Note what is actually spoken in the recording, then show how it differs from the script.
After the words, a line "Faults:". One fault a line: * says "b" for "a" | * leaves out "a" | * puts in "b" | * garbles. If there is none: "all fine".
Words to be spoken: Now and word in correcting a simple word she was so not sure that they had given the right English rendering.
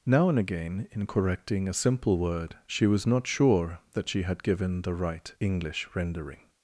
Now and again in correcting a simple word she was not sure that she had given the right English rendering.
Faults:
* says "again" for "word"
* leaves out "so"
* says "she" for "they"